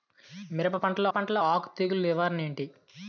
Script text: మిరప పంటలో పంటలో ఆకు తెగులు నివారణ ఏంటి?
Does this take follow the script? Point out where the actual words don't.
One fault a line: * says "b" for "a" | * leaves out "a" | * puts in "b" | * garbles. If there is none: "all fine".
all fine